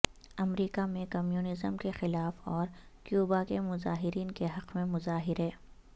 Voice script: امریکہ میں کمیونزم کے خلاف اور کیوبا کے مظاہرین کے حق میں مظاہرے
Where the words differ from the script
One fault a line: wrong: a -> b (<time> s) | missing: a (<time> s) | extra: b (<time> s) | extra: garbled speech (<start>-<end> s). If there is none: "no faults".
no faults